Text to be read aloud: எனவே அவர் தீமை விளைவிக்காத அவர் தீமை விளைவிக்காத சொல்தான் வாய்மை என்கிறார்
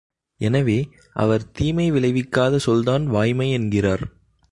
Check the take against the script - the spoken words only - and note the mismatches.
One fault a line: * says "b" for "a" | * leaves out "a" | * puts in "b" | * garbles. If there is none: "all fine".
* leaves out "அவர் தீமை விளைவிக்காத"